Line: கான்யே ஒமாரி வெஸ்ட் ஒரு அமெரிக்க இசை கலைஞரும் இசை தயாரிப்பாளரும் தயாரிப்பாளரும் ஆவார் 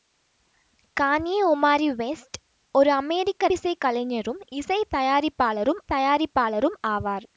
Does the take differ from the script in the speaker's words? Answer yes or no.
no